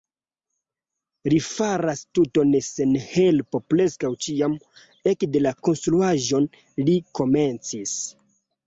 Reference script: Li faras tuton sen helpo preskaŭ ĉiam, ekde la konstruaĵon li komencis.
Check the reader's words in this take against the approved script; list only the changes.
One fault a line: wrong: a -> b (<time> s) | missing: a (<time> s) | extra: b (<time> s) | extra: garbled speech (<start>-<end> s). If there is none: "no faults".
no faults